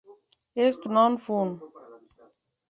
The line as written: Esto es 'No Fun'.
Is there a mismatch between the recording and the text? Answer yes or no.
yes